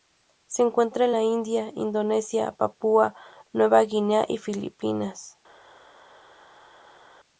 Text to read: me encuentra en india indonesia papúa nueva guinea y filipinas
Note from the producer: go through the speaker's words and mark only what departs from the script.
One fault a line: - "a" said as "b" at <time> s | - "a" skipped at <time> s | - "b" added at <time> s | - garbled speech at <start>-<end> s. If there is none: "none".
- "me" said as "se" at 0.5 s
- "la" added at 1.1 s